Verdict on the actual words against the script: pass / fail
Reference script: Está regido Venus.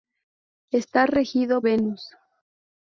pass